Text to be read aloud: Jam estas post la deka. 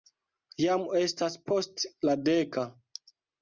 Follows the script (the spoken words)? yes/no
yes